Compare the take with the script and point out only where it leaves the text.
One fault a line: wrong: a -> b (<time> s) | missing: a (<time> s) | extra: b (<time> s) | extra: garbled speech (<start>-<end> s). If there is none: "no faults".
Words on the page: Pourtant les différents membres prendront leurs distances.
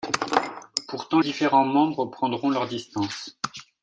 missing: les (1.2 s)